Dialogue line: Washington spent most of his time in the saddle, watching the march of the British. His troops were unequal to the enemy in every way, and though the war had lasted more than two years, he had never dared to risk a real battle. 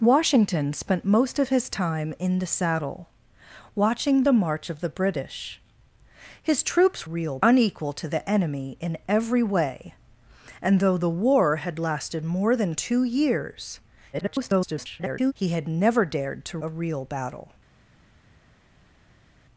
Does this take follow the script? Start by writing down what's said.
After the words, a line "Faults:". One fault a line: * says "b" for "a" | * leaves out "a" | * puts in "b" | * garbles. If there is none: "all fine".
Washington spent most of his time in the saddle, watching the march of the British. His troops real unequal to the enemy in every way, and though the war had lasted more than two years, [garbled] he had never dared to a real battle.
Faults:
* says "real" for "were"
* garbles
* leaves out "risk"